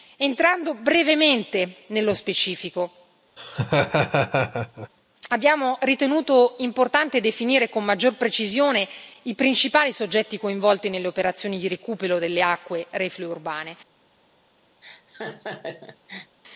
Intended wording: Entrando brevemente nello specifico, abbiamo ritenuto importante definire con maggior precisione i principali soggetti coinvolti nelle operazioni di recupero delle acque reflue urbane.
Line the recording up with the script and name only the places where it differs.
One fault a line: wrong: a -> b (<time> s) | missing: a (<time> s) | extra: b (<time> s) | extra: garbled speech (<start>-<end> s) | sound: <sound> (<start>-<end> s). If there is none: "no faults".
sound: laugh (3.4-4.9 s)
sound: laugh (14.8-16.4 s)